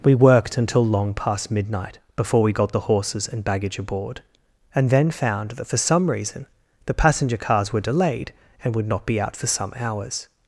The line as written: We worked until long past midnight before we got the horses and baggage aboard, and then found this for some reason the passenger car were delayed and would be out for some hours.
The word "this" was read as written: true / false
false